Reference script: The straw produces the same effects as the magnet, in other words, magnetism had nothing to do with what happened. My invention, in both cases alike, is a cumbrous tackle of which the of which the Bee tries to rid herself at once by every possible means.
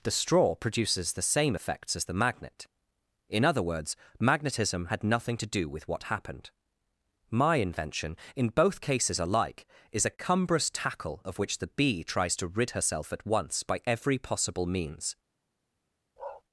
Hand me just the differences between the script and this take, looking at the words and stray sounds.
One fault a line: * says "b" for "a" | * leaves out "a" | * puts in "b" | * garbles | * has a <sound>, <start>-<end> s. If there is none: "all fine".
* leaves out "of which the"
* has a bark, 16.2-16.4 s